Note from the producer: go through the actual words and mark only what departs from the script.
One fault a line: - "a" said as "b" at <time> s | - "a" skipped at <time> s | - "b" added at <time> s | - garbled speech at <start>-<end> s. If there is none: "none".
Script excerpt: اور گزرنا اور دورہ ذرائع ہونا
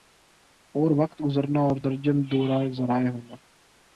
- "وقت" added at 1.0 s
- "درجن" added at 1.8 s